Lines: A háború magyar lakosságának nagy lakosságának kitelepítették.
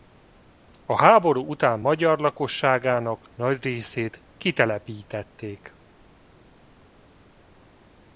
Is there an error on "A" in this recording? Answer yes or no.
no